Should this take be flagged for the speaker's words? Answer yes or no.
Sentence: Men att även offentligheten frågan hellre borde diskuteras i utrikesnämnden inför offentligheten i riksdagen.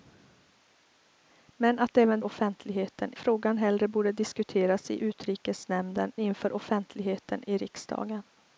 no